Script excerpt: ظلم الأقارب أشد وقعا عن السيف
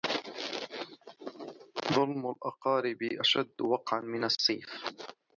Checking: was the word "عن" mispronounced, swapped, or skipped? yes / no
yes